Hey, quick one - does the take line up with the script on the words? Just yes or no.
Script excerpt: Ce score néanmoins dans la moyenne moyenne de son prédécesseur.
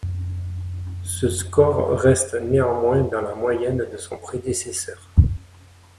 no